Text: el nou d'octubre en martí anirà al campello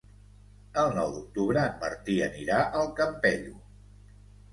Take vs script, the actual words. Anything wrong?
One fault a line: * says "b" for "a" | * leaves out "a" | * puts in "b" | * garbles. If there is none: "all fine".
all fine